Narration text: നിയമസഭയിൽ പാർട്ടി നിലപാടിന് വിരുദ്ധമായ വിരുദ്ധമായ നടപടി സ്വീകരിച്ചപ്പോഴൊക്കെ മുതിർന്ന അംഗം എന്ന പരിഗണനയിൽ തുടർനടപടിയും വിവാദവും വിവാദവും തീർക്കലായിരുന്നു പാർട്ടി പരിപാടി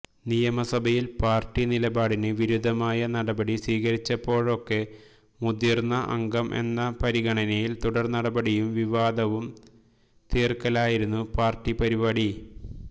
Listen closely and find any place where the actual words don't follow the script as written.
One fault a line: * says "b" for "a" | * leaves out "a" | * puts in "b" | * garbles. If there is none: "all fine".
* leaves out "വിരുദ്ധമായ"
* leaves out "വിവാദവും"